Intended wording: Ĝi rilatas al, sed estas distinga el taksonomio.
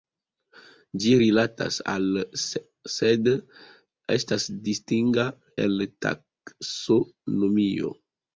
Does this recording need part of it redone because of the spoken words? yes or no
no